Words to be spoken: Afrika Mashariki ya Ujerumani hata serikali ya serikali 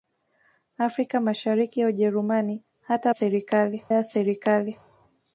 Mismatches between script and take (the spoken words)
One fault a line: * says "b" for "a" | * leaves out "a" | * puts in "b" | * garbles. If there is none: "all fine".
all fine